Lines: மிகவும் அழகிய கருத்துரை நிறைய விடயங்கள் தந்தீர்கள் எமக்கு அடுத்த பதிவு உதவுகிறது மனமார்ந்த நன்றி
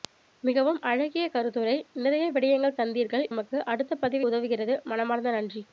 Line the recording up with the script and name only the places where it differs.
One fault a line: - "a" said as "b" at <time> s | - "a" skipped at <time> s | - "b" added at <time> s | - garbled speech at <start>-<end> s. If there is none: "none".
none